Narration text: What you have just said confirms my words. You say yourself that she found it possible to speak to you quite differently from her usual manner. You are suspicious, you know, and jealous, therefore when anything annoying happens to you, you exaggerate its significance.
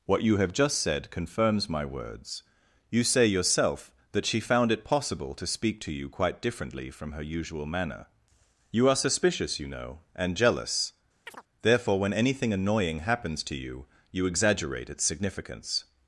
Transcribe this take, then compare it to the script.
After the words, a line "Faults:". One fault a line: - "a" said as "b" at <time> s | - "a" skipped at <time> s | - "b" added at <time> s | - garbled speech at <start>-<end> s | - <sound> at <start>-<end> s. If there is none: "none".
What you have just said confirms my words. You say yourself that she found it possible to speak to you quite differently from her usual manner. You are suspicious, you know, and jealous, therefore when anything annoying happens to you, you exaggerate its significance.
Faults:
- chirp at 11.3-11.4 s